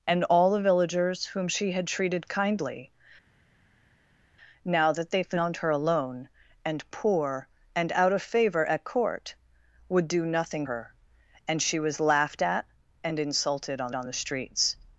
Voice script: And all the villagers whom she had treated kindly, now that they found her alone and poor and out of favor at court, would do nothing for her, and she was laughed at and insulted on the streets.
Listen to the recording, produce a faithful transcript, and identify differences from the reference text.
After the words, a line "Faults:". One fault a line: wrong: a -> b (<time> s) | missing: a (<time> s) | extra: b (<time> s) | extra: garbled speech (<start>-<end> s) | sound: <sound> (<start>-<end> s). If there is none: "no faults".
And all the villagers whom she had treated kindly, now that they found her alone and poor and out of favor at court, would do nothing her, and she was laughed at and insulted on on the streets.
Faults:
missing: for (10.7 s)
extra: on (13.9 s)